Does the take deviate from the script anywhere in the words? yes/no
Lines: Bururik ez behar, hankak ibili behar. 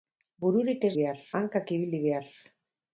no